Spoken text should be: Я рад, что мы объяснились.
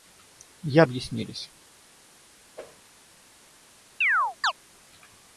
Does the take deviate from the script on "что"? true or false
true